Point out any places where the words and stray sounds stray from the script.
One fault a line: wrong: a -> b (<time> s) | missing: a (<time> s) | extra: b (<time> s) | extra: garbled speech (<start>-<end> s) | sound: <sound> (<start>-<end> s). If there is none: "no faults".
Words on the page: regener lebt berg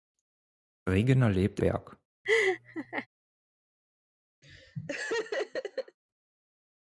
sound: laugh (2.2-3.1 s)
sound: laugh (4.4-6.0 s)